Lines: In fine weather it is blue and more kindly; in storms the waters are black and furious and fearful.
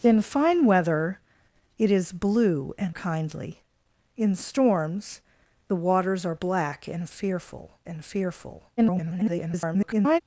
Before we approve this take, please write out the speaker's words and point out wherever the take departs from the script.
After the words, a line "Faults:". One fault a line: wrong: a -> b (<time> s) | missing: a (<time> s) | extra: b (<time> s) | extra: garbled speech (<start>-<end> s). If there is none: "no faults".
In fine weather it is blue and kindly; in storms the waters are black and fearful and fearful. [garbled]
Faults:
missing: more (3.0 s)
wrong: furious -> fearful (7.1 s)
extra: garbled speech (8.8-10.2 s)